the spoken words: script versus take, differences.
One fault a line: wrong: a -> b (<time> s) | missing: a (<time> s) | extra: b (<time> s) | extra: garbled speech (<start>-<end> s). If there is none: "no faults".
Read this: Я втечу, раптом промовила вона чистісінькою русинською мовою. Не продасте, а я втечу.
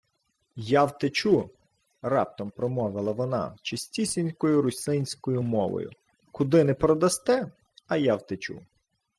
extra: Куди (6.3 s)